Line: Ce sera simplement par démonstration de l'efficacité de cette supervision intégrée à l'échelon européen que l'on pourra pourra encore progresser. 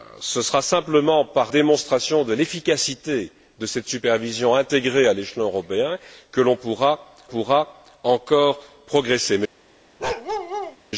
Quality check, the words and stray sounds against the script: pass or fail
fail